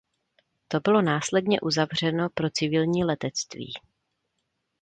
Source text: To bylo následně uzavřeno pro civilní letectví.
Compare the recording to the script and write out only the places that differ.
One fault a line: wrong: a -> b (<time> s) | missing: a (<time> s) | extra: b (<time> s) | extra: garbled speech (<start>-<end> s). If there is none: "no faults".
no faults